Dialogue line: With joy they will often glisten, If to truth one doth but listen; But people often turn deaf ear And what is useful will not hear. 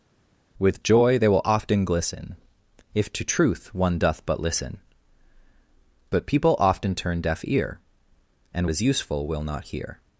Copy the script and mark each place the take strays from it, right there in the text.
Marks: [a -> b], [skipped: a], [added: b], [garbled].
With joy they will often glisten, If to truth one doth but listen; But people often turn deaf ear And [skipped: what] is useful will not hear.